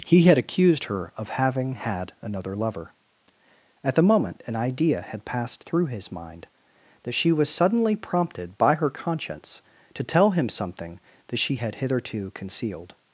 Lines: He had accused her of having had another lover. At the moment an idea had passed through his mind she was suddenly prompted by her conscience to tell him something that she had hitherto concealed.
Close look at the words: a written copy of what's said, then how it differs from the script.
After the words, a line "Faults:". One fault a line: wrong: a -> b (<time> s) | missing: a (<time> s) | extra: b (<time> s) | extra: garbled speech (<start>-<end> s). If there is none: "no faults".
He had accused her of having had another lover. At the moment an idea had passed through his mind that she was suddenly prompted by her conscience to tell him something that she had hitherto concealed.
Faults:
extra: that (7.0 s)